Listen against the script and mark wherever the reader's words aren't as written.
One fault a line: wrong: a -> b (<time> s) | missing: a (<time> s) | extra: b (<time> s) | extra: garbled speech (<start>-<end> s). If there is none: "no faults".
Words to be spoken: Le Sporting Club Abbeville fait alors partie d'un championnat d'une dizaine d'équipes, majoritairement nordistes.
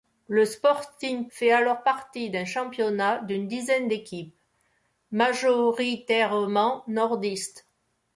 missing: Club Abbeville (1.3 s)